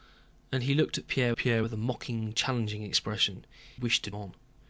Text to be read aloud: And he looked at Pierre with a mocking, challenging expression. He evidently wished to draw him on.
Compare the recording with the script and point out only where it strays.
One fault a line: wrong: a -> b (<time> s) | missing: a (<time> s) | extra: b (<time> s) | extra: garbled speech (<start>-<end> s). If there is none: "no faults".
extra: Pierre (1.3 s)
missing: He evidently (3.4 s)
missing: draw him (4.1 s)